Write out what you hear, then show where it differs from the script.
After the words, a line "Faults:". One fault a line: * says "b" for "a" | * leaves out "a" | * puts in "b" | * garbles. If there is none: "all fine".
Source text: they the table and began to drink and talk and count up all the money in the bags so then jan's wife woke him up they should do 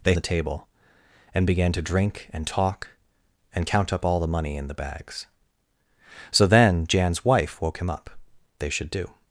they the table and began to drink and talk and count up all the money in the bags so then jan's wife woke him up they should do
Faults:
all fine